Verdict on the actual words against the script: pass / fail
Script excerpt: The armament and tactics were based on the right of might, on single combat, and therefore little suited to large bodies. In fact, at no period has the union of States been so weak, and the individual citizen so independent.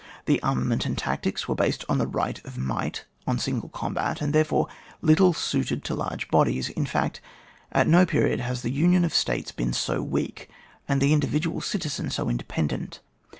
pass